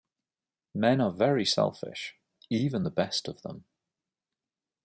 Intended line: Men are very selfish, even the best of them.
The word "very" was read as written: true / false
true